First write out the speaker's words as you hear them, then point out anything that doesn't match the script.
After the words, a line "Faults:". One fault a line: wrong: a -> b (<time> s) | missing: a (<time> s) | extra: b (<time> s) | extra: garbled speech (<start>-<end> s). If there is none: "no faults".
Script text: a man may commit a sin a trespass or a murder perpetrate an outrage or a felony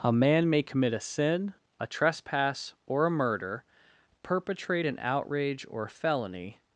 a man may commit a sin a trespass or a murder perpetrate an outrage or felony
Faults:
missing: a (5.9 s)